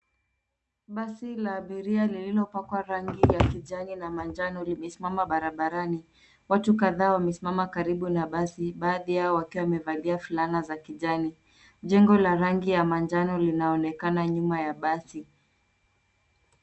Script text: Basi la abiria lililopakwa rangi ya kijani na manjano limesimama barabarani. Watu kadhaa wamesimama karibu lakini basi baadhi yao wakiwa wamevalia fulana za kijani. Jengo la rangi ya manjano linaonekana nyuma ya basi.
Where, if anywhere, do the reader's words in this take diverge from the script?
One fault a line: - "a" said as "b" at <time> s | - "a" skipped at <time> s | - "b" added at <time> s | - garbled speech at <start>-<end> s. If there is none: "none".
- "lakini" said as "na" at 8.1 s